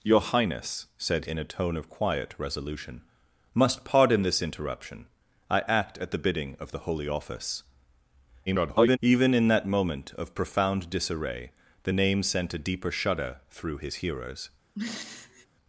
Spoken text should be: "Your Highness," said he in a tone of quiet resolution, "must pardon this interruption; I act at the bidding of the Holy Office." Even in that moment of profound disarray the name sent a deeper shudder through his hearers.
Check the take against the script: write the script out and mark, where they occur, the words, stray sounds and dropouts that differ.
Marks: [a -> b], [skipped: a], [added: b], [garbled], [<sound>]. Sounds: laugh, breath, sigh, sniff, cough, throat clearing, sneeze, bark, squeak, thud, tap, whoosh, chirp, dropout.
"Your Highness," said [skipped: he] in a tone of quiet resolution, "must pardon this interruption; I act at the bidding of the Holy Office." [garbled] Even in that moment of profound disarray the name sent a deeper shudder through his hearers. [throat clearing]